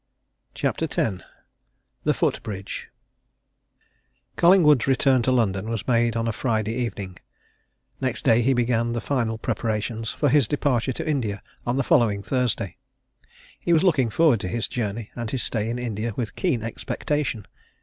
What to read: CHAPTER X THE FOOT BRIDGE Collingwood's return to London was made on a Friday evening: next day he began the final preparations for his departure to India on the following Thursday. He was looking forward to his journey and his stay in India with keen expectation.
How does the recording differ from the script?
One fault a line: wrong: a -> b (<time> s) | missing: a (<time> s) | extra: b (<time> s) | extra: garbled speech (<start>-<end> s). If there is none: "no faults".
no faults